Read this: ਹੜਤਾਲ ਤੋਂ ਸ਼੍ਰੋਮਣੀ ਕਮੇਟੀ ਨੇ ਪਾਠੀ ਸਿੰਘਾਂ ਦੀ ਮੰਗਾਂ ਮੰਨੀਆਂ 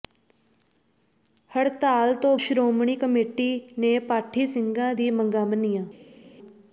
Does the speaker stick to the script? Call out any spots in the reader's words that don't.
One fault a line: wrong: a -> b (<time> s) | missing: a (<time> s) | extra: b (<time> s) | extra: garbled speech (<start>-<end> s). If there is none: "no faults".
no faults